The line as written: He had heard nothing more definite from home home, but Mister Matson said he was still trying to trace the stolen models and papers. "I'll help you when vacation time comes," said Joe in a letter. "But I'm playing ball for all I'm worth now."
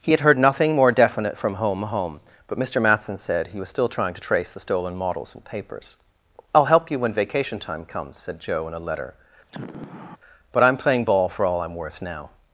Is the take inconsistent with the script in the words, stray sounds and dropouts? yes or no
yes